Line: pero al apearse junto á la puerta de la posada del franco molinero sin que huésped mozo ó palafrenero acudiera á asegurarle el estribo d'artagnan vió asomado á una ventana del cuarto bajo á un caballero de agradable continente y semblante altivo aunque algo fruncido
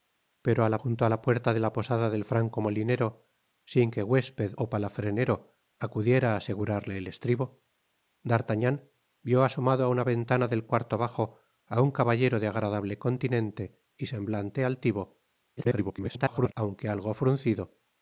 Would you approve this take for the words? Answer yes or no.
no